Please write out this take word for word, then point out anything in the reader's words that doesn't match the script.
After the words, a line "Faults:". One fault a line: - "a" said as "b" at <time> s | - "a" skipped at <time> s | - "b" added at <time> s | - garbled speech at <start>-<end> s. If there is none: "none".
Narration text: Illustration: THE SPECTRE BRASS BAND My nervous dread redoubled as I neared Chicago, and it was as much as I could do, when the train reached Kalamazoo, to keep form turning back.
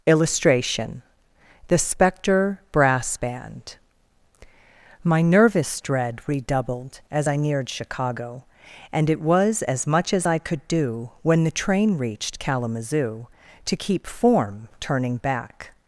Illustration: THE SPECTRE BRASS BAND My nervous dread redoubled as I neared Chicago, and it was as much as I could do, when the train reached Kalamazoo, to keep form turning back.
Faults:
none